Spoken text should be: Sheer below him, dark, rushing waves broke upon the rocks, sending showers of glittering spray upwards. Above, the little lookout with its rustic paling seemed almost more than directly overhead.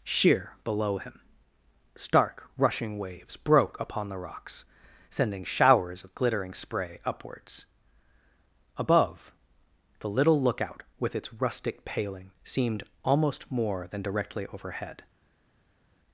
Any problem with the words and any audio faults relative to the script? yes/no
yes